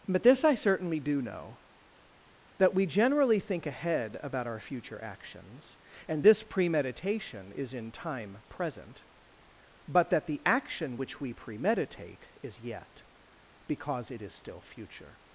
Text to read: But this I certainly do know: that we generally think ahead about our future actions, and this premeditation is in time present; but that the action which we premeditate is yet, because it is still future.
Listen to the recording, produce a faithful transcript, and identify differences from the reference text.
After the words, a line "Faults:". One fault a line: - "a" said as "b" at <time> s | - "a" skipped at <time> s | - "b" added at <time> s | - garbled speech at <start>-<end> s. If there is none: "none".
But this I certainly do know: that we generally think ahead about our future actions, and this premeditation is in time present; but that the action which we premeditate is yet, because it is still future.
Faults:
none